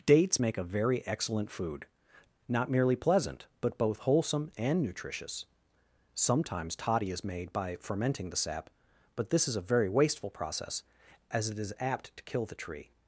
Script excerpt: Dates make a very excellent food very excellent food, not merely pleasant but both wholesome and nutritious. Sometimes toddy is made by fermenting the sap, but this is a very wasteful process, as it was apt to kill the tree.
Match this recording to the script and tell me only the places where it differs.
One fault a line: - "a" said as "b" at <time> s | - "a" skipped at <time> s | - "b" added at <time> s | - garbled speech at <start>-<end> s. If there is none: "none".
- "very excellent food" skipped at 1.9 s
- "was" said as "is" at 11.6 s